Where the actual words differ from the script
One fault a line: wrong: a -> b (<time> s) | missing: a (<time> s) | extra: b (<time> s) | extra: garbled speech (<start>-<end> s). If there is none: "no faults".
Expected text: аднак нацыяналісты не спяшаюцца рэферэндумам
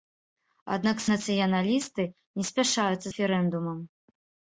no faults